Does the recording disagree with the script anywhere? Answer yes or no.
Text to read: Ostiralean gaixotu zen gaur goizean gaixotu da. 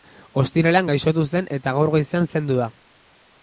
yes